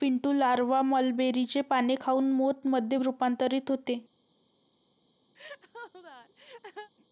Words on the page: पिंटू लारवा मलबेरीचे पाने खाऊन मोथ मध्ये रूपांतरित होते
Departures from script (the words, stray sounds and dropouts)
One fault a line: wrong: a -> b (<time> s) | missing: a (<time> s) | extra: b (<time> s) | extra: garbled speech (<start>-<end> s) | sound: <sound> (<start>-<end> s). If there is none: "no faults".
sound: laugh (5.4-6.9 s)